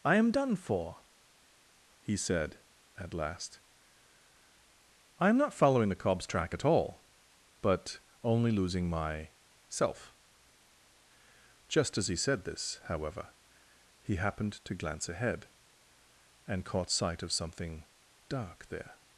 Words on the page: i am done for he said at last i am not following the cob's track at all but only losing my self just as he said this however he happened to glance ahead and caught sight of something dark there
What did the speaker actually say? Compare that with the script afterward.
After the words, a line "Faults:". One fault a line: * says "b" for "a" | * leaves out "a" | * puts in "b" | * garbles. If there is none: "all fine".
i am done for he said at last i am not following the cob's track at all but only losing my self just as he said this however he happened to glance ahead and caught sight of something dark there
Faults:
all fine